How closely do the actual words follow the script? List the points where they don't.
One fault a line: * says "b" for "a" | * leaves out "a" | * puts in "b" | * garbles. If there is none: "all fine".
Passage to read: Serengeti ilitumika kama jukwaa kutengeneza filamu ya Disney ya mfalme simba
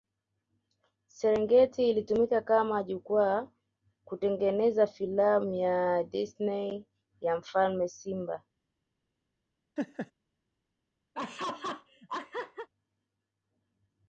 all fine